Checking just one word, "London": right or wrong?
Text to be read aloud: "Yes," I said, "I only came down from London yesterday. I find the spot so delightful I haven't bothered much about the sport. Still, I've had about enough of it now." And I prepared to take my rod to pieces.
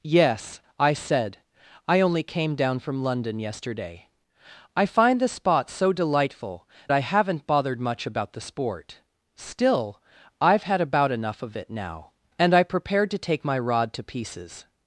right